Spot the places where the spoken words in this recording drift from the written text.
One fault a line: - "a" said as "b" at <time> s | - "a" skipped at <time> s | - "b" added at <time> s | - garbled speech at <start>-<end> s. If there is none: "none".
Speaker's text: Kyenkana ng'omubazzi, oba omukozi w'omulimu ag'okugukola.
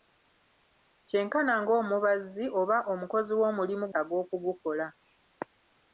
none